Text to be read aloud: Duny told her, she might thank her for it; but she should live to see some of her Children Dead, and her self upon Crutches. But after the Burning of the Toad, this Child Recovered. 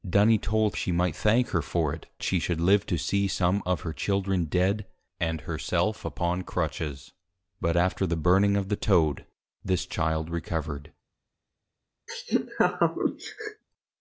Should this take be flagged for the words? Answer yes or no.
yes